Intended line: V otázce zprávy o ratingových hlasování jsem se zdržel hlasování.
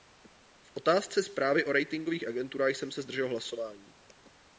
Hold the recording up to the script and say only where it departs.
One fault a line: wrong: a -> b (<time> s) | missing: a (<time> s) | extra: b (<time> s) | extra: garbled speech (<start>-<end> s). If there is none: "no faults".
wrong: hlasování -> agenturách (2.3 s)